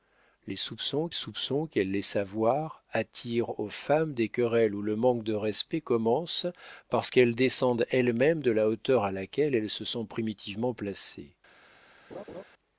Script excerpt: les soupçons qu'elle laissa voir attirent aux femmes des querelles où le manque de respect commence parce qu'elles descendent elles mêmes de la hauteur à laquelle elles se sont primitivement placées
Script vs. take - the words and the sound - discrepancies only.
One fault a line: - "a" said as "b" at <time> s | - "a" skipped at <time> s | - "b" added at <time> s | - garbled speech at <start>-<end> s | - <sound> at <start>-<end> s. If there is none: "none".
- "soupçons" added at 1.1 s
- laugh at 12.1-12.4 s